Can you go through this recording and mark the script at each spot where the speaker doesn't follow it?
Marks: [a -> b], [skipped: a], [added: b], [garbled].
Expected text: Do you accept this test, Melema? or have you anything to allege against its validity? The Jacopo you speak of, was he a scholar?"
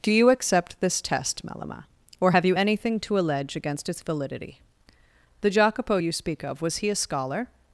Do you accept this test, Melema? or have you anything to allege against its validity? The Jacopo you speak of, was he a scholar?"